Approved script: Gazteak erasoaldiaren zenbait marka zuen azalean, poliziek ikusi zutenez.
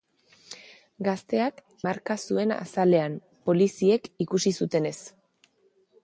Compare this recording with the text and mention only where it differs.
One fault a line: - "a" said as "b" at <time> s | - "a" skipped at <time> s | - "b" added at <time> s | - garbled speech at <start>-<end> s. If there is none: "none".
- "erasoaldiaren zenbait" skipped at 1.6 s